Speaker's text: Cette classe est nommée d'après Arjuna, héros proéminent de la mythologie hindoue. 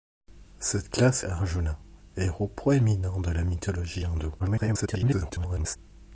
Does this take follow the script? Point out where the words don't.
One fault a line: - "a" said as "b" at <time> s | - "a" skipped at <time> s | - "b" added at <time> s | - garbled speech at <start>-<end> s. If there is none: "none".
- "est nommée d'après" skipped at 1.2 s
- garbled speech at 4.4-5.8 s